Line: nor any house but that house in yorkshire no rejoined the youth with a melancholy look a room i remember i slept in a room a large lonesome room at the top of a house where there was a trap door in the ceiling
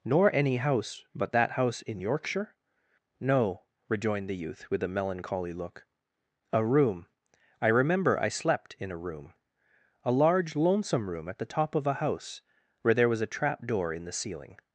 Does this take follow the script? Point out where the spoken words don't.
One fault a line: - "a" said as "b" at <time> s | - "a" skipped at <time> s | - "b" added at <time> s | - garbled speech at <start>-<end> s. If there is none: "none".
none